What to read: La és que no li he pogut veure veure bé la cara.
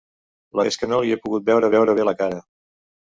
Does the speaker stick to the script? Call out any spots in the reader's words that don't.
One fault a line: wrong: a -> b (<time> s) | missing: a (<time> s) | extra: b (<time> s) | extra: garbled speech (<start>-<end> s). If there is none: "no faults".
no faults